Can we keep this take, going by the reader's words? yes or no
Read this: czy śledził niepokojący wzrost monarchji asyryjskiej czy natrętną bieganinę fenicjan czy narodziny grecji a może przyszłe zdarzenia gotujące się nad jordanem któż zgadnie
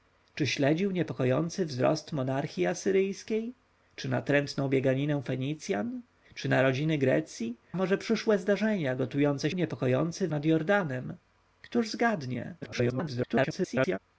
no